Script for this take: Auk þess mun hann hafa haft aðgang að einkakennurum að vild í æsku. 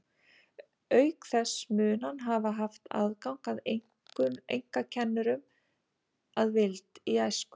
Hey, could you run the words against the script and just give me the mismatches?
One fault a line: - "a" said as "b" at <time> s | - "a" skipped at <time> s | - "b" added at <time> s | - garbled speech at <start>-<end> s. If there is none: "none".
none